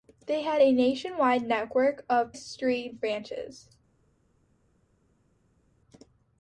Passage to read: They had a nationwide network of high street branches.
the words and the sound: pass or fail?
fail